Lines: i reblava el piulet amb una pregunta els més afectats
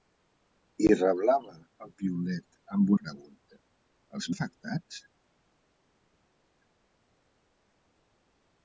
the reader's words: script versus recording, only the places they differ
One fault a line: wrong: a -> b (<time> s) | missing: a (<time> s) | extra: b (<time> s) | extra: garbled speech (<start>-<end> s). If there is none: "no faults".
missing: una (2.9 s)
missing: més (4.3 s)